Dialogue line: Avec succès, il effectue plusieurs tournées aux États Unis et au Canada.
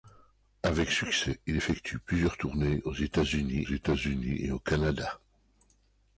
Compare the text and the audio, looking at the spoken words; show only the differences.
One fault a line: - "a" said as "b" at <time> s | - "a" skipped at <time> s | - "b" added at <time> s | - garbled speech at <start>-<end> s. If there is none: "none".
- "États Unis" added at 3.6 s